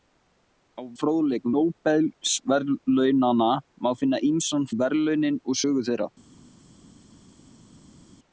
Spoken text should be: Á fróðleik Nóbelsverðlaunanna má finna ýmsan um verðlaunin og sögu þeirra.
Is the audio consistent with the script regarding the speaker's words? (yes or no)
yes